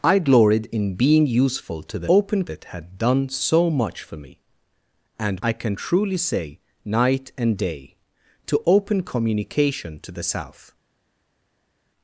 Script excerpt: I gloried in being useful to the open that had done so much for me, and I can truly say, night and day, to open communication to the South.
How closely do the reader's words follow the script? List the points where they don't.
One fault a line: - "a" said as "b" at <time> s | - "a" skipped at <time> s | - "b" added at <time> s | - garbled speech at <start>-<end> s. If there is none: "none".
none